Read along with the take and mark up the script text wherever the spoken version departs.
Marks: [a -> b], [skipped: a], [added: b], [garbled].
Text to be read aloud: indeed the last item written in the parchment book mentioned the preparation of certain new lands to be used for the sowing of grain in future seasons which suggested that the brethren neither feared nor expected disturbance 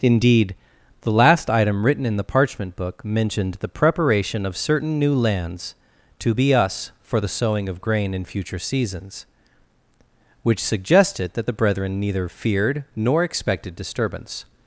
indeed the last item written in the parchment book mentioned the preparation of certain new lands to be [used -> us] for the sowing of grain in future seasons which suggested that the brethren neither feared nor expected disturbance